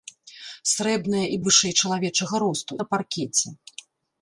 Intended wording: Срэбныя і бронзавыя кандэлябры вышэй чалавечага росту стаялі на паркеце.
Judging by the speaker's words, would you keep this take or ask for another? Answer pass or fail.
fail